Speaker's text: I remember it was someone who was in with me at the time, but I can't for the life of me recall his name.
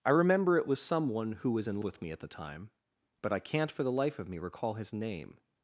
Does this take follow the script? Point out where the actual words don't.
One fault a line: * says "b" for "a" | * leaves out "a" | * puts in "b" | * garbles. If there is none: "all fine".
all fine